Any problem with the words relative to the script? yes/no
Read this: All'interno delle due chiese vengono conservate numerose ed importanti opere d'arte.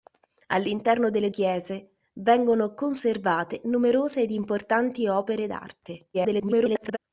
yes